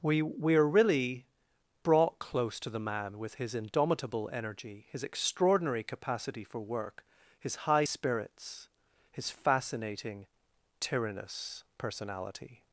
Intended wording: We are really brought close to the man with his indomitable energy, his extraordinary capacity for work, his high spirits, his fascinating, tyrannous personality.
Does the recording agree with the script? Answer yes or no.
no